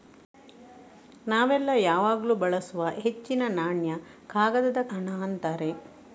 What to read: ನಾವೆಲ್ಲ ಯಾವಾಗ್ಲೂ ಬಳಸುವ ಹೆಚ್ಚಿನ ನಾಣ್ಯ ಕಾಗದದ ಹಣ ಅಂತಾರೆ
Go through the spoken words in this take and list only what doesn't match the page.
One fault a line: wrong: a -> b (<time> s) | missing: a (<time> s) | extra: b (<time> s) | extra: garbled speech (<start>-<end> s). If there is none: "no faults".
no faults